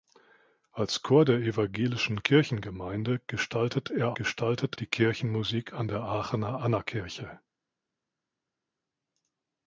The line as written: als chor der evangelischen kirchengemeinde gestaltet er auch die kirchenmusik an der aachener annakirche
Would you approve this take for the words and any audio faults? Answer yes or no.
no